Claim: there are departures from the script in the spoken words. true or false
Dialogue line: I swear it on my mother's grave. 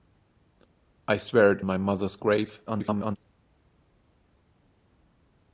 true